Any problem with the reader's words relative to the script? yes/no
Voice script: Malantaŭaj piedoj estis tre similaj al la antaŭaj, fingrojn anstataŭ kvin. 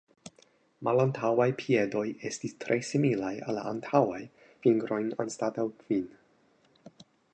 no